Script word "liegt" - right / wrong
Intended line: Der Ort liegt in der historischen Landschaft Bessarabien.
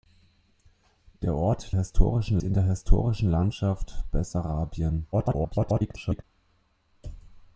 wrong